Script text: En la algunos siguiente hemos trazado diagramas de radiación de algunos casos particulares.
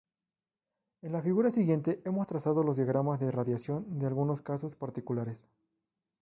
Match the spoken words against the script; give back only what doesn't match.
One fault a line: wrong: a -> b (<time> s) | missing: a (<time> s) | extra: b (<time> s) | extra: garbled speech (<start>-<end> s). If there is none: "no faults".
wrong: algunos -> figura (1.2 s)
extra: los (2.6 s)